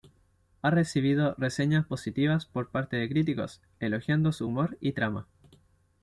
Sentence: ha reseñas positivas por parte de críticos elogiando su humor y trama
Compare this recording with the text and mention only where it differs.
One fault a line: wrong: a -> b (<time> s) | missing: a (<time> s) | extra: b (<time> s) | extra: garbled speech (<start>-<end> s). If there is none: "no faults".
extra: recibido (0.7 s)